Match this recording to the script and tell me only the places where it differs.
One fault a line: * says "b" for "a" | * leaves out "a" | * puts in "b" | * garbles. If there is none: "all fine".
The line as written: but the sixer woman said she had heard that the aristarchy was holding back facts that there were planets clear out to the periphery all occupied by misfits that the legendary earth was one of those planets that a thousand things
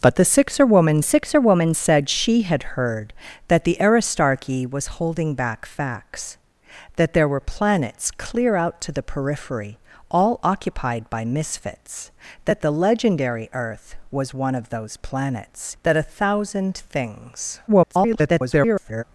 * puts in "sixer woman"
* garbles